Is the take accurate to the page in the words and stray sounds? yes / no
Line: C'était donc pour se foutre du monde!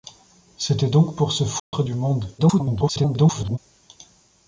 no